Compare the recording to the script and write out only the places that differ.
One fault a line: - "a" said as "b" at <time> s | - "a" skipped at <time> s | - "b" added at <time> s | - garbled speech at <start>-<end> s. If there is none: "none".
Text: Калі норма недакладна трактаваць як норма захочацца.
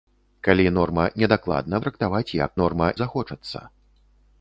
none